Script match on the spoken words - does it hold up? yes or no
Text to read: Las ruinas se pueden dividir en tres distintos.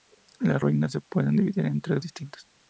yes